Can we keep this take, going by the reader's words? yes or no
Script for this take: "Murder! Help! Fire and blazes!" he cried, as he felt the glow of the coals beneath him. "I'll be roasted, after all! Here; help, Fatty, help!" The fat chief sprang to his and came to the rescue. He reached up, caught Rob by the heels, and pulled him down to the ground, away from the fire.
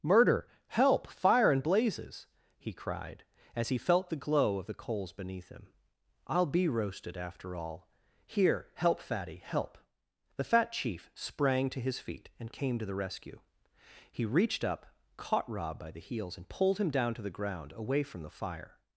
no